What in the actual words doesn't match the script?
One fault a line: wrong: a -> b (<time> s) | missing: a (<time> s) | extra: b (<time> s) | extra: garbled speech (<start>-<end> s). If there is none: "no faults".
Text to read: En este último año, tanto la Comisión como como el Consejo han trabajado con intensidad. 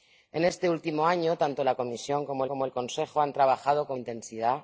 no faults